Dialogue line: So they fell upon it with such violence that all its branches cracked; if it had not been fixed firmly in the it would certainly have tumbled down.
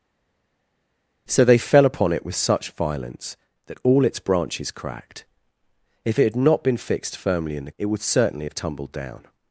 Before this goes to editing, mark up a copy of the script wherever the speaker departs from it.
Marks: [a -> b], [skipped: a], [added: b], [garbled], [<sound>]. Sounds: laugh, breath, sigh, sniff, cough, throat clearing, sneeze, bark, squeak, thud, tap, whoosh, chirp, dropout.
So they fell upon it with such violence that all its branches cracked; if it had not been fixed firmly in the it would certainly have tumbled down.